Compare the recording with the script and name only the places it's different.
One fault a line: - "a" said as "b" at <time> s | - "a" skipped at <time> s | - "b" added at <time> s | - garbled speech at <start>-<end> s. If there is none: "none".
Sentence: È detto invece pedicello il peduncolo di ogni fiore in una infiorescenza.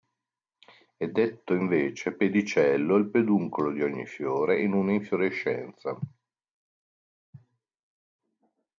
none